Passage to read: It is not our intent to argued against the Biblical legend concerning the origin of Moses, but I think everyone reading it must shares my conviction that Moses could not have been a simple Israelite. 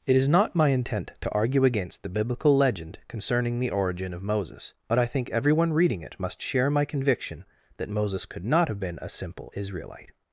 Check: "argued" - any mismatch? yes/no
yes